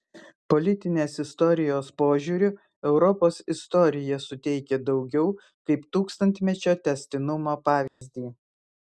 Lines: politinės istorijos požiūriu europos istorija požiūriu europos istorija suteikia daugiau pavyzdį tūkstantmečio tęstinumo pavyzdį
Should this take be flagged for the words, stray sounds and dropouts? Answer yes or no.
yes